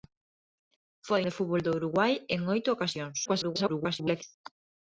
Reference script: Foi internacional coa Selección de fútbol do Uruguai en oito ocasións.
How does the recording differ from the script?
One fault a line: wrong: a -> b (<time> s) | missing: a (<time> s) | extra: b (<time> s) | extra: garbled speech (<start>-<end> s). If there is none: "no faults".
missing: internacional coa Selección (1.2 s)
extra: garbled speech (3.2-4.2 s)